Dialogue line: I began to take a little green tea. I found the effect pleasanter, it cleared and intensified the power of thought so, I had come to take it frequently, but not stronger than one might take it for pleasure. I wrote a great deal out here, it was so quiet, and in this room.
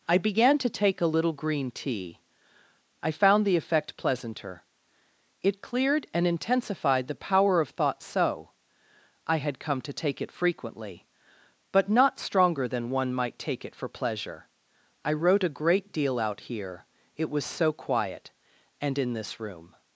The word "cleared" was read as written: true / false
true